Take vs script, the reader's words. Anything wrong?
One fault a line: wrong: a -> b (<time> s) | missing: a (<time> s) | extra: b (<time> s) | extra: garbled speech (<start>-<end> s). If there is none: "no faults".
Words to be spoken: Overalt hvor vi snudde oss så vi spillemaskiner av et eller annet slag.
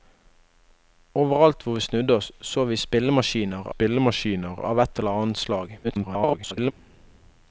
extra: spillemaskiner (3.7 s)
extra: garbled speech (5.8-6.7 s)